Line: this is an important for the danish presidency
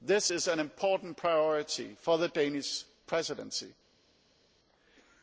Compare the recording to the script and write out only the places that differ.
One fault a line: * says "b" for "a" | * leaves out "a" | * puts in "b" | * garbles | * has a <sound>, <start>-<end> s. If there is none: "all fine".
* puts in "priority"